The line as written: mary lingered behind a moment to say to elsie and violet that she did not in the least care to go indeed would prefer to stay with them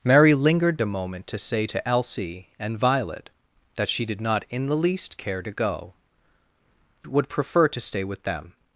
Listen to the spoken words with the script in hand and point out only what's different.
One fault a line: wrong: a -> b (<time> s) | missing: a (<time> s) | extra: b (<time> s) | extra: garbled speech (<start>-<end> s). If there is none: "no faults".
missing: behind (0.8 s)
missing: indeed (5.9 s)